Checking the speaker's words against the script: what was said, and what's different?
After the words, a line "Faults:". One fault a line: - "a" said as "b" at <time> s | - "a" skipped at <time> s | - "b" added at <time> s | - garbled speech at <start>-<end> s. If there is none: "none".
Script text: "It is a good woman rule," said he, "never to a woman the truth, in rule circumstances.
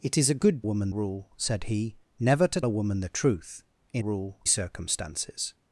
"It is a good woman rule," said he, "never to a woman the truth, in rule circumstances.
Faults:
none